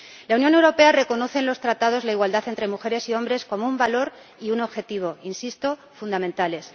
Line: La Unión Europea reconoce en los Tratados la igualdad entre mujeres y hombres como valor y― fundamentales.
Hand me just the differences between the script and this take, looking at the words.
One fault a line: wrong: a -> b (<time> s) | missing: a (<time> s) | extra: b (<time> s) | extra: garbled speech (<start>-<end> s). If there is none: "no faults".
extra: un (3.7 s)
extra: un objetivo insisto (4.5 s)